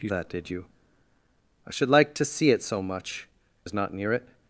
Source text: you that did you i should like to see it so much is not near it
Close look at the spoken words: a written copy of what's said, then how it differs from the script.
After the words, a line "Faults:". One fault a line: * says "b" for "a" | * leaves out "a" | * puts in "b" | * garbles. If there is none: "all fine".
you that did you i should like to see it so much is not near it
Faults:
all fine